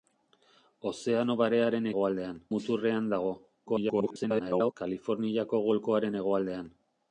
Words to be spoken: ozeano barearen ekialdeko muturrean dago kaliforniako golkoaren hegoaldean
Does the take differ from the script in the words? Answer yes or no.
yes